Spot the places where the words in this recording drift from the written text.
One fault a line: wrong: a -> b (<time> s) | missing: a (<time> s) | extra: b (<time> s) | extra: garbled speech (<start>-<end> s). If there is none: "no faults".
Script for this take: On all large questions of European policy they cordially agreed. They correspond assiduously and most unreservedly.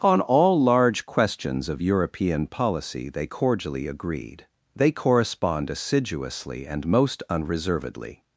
no faults